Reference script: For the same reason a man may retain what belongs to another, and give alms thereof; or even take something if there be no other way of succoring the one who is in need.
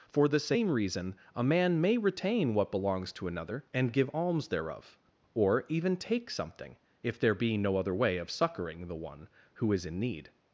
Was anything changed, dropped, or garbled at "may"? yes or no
no